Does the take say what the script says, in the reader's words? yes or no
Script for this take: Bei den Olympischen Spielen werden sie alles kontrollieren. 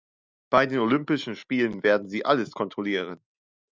yes